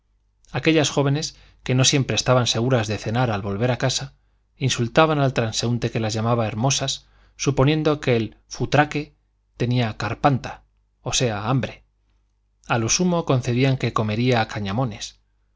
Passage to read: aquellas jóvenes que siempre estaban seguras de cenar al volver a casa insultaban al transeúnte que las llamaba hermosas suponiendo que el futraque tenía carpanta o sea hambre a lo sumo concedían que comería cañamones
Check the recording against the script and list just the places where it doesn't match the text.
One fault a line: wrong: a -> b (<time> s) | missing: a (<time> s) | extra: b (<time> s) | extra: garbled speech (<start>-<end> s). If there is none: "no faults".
extra: no (1.8 s)